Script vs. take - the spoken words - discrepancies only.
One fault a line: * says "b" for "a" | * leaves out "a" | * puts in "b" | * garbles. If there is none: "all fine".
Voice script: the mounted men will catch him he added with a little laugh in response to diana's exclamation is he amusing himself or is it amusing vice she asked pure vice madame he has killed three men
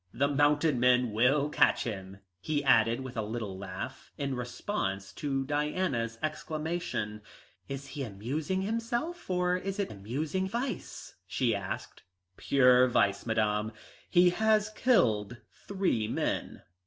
all fine